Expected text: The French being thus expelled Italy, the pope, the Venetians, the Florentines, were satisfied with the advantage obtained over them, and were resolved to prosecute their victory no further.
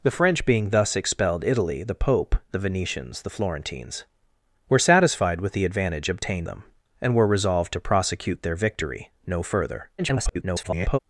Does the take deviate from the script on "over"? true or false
true